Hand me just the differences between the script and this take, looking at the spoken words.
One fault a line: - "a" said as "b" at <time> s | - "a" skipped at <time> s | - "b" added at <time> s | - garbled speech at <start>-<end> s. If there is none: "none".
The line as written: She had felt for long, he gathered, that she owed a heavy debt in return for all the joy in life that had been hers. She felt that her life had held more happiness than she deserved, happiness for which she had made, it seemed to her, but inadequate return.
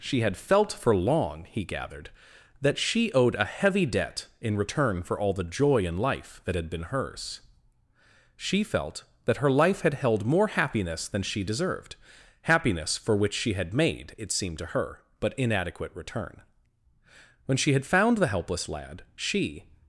- "When she had found the helpless lad she" added at 17.4 s